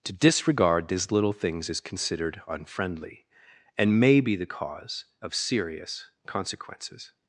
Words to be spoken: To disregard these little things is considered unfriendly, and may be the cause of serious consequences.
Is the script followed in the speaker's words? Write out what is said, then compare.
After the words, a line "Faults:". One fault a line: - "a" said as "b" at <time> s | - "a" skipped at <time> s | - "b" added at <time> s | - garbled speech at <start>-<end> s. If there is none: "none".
To disregard these little things is considered unfriendly, and may be the cause of serious consequences.
Faults:
none